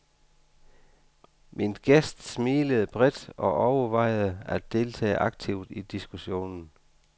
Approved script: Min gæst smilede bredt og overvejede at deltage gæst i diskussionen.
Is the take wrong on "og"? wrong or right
right